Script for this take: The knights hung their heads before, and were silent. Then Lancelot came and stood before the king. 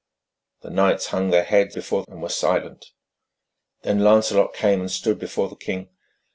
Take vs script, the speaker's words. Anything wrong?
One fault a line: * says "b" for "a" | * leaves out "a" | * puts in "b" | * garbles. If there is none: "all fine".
all fine